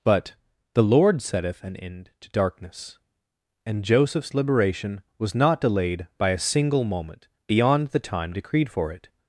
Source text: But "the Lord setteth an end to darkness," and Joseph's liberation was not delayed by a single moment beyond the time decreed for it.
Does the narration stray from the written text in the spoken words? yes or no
no